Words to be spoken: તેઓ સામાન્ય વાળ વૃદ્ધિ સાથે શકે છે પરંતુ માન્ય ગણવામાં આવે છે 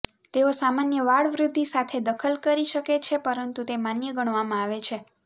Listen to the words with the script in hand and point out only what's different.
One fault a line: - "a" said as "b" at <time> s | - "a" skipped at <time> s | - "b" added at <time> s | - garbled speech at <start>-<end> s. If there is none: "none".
- "દખલ કરી" added at 2.1 s
- "તે" added at 3.7 s